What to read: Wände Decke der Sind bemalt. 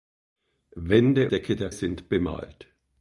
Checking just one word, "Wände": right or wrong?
right